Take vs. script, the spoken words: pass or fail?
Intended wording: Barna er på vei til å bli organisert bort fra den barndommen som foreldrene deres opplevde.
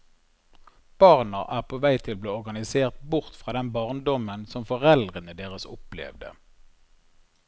pass